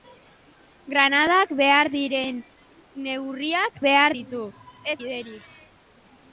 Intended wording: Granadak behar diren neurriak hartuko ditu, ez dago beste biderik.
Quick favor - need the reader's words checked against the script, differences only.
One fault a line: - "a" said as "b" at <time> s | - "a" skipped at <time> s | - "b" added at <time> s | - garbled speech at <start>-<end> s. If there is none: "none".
- "hartuko" said as "behar" at 3.8 s
- "dago beste" skipped at 5.0 s